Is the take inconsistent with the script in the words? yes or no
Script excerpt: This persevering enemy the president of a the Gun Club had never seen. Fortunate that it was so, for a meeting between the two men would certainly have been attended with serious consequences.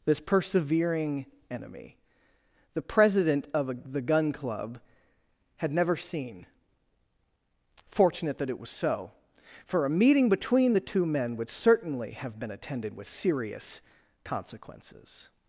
no